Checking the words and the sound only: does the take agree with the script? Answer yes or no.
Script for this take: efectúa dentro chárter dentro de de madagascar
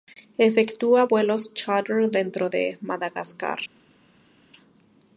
no